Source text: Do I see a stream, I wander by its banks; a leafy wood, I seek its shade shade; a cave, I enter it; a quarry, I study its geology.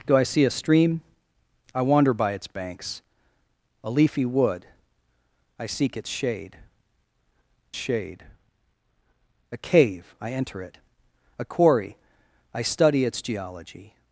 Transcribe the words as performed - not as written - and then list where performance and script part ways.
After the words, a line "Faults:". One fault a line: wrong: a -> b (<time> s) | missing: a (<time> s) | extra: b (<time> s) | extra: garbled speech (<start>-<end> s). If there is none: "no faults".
Do I see a stream, I wander by its banks; a leafy wood, I seek its shade shade; a cave, I enter it; a quarry, I study its geology.
Faults:
no faults